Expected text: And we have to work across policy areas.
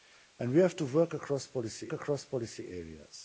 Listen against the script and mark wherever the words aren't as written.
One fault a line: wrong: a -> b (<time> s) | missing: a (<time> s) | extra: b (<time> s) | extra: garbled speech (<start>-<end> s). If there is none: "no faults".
extra: across policy (1.9 s)